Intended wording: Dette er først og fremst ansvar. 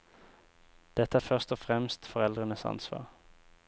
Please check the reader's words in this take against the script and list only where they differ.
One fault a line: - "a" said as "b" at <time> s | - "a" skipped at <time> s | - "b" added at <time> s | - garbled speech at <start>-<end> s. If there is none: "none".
- "foreldrenes" added at 2.0 s